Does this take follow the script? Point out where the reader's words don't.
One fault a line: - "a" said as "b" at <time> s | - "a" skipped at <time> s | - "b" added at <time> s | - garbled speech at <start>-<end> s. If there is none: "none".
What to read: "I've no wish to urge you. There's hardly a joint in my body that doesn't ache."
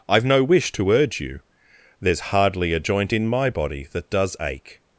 - "doesn't" said as "does" at 4.1 s